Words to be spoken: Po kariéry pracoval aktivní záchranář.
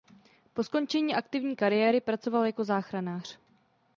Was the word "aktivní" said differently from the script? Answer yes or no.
yes